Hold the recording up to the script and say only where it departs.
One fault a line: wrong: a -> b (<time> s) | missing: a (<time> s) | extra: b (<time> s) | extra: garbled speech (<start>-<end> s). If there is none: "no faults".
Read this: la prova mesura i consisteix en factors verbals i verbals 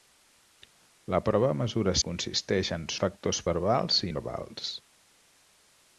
no faults